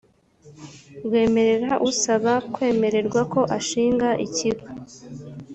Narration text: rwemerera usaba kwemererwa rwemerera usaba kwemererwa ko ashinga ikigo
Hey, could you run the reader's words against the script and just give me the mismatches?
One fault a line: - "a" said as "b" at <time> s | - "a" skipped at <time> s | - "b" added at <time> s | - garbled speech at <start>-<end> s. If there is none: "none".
- "rwemerera usaba kwemererwa" skipped at 3.2 s